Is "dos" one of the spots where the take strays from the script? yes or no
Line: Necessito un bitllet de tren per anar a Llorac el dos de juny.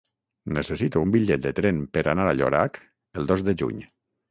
no